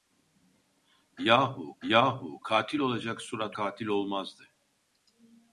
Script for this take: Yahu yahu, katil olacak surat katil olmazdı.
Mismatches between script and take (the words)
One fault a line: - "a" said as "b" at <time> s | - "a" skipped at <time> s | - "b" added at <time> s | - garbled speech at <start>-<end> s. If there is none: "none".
none